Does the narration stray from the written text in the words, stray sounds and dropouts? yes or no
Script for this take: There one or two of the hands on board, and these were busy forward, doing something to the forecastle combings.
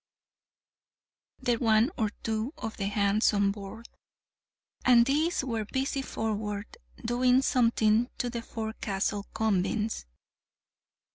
no